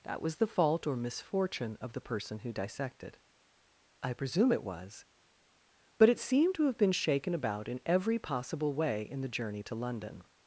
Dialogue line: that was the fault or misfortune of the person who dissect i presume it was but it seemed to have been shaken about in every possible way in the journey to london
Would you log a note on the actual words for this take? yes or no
yes